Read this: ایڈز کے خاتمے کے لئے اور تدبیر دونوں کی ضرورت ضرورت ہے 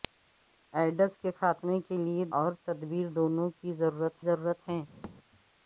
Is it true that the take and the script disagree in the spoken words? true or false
false